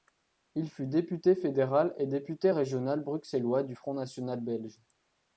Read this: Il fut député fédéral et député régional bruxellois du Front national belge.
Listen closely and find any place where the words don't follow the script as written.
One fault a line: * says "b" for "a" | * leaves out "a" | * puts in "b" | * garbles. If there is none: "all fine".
all fine